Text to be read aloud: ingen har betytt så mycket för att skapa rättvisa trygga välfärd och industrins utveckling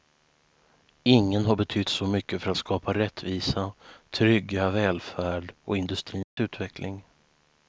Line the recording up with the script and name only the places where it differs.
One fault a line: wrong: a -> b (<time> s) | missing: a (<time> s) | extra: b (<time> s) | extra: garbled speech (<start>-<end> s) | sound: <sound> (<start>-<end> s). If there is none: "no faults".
sound: dropout (6.2-6.4 s)